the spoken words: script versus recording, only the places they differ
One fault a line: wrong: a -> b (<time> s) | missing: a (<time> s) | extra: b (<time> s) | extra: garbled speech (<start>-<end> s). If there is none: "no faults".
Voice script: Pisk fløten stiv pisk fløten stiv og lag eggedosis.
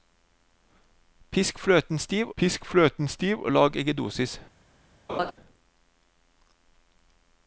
no faults